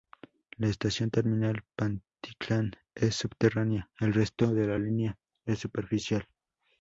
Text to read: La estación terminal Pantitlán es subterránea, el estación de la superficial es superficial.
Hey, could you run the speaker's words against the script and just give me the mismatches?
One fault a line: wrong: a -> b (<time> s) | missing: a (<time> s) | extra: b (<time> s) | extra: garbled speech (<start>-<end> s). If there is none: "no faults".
wrong: estación -> resto (4.2 s)
wrong: superficial -> línea (4.8 s)